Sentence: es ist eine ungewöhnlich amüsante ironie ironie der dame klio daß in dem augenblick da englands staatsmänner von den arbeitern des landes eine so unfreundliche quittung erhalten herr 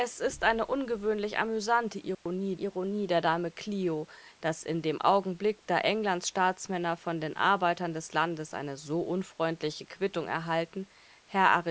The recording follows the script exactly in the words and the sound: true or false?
false